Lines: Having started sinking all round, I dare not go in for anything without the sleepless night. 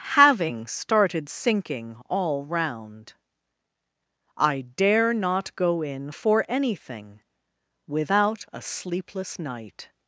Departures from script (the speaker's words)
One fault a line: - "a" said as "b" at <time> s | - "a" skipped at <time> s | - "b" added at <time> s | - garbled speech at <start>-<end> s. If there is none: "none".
- "the" said as "a" at 8.5 s